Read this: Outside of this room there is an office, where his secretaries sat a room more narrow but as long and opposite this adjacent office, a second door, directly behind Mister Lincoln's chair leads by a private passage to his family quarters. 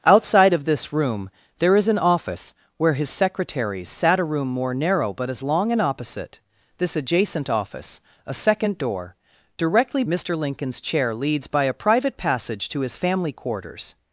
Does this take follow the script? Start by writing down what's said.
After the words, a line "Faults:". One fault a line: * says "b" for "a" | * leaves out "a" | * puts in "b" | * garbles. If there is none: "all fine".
Outside of this room there is an office, where his secretaries sat a room more narrow but as long and opposite this adjacent office, a second door, directly Mister Lincoln's chair leads by a private passage to his family quarters.
Faults:
* leaves out "behind"